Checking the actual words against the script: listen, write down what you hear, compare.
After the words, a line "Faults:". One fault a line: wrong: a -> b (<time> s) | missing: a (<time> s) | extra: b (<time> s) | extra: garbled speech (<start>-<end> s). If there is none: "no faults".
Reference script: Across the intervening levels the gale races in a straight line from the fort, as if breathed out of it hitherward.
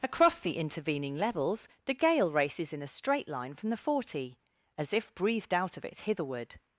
Across the intervening levels the gale races in a straight line from the forty, as if breathed out of it hitherward.
Faults:
wrong: fort -> forty (3.8 s)